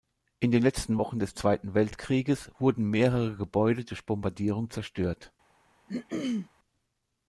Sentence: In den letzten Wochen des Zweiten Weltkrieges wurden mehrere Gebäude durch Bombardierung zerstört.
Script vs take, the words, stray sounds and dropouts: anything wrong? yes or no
yes